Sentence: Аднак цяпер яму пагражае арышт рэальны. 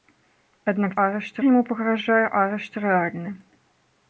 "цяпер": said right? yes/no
no